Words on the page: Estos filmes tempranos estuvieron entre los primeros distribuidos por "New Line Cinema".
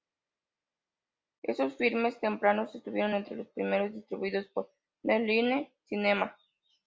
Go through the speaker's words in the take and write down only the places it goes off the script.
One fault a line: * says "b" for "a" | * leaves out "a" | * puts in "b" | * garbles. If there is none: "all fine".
all fine